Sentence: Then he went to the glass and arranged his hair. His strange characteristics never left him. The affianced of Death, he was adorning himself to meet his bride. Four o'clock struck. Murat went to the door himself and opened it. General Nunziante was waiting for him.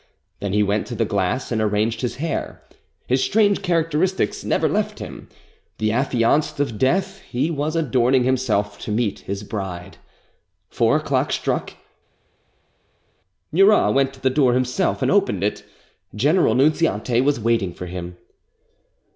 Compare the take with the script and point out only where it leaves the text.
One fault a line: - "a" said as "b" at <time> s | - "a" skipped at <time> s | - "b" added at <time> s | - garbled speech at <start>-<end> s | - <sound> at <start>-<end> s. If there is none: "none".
none